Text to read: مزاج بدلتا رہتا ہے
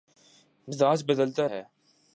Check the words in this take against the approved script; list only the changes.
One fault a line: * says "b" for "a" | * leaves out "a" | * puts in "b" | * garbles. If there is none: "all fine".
* leaves out "رہتا"